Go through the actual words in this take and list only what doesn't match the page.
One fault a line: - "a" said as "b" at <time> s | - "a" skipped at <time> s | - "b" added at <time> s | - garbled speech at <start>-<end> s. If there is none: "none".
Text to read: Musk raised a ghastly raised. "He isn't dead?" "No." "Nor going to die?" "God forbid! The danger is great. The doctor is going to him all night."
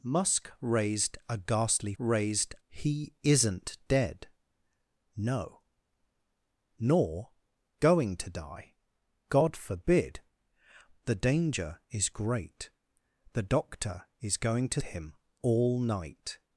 none